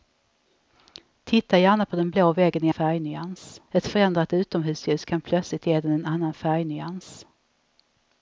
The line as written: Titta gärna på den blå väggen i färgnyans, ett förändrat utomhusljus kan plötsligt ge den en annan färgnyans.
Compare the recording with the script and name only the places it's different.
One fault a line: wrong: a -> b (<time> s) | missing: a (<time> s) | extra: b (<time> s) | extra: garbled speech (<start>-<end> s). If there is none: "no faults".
no faults